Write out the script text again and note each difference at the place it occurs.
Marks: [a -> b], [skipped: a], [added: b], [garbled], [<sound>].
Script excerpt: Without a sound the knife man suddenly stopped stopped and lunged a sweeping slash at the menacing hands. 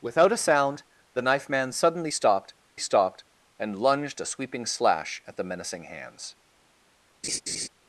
Without a sound the knife man suddenly stopped stopped and lunged a sweeping slash at the menacing hands. [laugh]